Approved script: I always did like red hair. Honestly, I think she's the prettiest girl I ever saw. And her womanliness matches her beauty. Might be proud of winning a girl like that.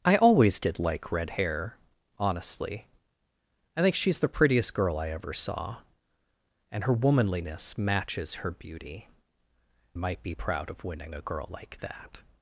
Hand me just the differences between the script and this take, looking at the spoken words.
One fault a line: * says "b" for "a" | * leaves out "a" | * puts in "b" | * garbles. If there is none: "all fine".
all fine